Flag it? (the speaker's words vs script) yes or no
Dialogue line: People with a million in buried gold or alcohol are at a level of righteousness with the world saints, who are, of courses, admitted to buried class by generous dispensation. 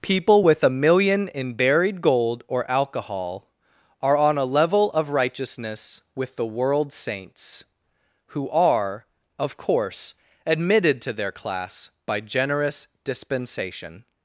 yes